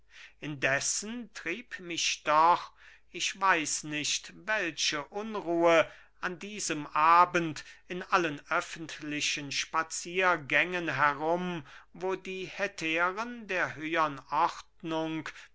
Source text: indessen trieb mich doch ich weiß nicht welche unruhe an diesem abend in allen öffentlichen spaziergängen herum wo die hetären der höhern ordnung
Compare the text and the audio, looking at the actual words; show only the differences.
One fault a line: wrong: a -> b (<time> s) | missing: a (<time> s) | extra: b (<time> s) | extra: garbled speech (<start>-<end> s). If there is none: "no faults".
no faults